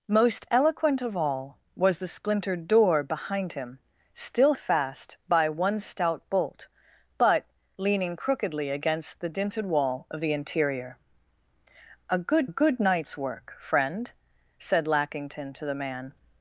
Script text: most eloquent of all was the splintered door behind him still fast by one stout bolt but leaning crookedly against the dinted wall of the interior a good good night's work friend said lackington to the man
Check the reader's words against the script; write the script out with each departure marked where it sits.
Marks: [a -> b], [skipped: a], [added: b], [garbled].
most eloquent of all was the splintered door behind him still fast by one stout bolt but leaning crookedly against the dinted wall of the interior a good good night's work friend said lackington to the man